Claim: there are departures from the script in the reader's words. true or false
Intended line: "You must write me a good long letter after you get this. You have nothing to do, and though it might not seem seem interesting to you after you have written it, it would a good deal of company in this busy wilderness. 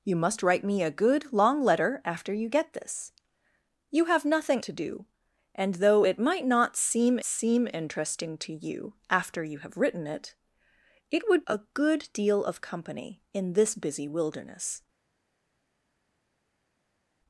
false